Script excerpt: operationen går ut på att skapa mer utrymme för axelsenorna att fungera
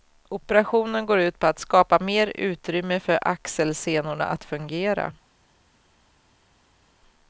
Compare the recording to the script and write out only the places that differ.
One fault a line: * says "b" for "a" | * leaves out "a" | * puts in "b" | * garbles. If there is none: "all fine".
all fine